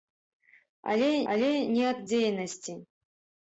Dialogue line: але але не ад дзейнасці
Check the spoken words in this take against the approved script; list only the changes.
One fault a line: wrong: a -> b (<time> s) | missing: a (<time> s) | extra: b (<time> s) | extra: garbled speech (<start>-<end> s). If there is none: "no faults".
no faults